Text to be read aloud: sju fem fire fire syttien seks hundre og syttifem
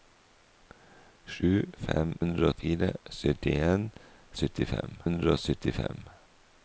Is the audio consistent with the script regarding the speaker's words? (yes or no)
no